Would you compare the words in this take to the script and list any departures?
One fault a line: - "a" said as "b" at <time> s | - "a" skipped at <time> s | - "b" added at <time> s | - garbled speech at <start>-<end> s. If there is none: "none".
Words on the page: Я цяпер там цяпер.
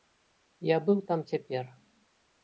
- "цяпер" said as "быў" at 0.9 s